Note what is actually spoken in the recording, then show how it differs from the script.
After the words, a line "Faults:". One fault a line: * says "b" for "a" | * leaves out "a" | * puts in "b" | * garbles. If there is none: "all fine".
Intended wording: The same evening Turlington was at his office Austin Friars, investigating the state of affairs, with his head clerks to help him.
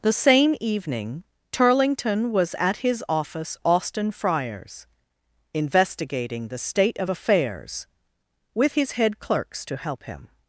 The same evening Turlington was at his office Austin Friars, investigating the state of affairs, with his head clerks to help him.
Faults:
all fine